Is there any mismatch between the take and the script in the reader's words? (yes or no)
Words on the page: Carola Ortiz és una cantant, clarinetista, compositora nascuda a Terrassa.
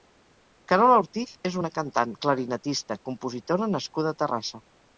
no